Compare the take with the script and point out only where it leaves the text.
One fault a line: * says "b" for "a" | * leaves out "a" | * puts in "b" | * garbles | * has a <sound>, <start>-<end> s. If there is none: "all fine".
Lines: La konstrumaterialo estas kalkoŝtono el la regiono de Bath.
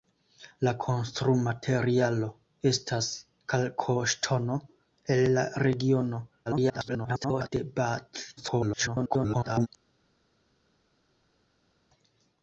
* garbles
* garbles